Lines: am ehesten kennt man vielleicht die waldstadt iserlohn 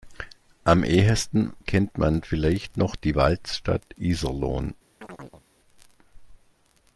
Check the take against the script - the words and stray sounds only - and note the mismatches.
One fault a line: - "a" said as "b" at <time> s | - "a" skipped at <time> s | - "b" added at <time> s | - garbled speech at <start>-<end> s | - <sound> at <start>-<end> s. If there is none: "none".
- "noch" added at 2.8 s
- chirp at 5.0-5.4 s